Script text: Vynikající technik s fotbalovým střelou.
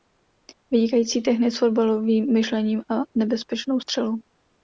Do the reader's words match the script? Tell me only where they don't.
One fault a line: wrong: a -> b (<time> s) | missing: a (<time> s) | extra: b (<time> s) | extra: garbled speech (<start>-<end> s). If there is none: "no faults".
extra: myšlením a nebezpečnou (2.3 s)